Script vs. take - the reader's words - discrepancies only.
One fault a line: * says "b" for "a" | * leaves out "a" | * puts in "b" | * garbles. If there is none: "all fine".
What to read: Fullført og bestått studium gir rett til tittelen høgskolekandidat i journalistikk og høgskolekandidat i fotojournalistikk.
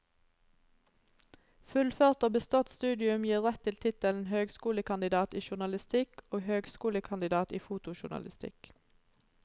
all fine